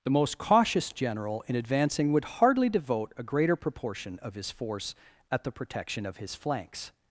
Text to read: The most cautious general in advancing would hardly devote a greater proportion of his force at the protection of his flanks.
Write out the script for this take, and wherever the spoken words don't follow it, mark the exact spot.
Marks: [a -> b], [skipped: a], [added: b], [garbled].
The most cautious general in advancing would hardly devote a greater proportion of his force at the protection of his flanks.